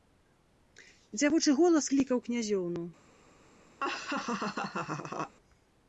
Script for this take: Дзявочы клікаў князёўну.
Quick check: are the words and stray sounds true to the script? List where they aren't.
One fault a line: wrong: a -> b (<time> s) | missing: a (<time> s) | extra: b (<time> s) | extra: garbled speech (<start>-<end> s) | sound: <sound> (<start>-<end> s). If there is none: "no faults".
extra: голас (1.6 s)
sound: laugh (3.8-5.4 s)